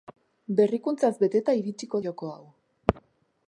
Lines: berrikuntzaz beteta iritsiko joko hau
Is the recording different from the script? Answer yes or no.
no